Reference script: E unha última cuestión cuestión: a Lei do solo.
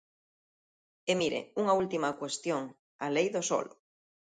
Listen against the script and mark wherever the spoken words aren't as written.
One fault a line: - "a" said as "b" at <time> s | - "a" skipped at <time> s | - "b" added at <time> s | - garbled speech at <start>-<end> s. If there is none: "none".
- "mire" added at 1.2 s
- "cuestión" skipped at 2.6 s